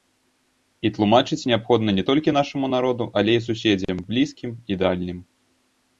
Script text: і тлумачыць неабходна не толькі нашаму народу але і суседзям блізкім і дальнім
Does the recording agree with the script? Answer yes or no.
yes